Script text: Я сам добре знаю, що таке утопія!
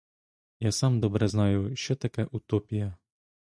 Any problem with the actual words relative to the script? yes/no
no